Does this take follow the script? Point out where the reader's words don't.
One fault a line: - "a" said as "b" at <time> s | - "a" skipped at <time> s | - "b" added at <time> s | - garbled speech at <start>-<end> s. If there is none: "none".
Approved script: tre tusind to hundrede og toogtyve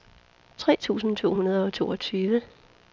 none